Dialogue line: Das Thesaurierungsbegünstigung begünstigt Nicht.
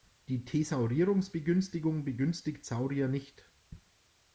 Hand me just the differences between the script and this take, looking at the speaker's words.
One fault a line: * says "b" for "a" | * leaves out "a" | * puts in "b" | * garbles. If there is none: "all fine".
* says "Die" for "Das"
* puts in "Saurier"